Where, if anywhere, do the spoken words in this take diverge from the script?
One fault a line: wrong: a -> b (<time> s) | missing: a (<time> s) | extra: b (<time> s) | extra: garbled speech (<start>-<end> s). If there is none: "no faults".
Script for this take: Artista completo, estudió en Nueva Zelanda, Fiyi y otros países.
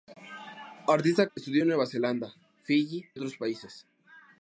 missing: completo (1.3 s)
missing: y (3.1 s)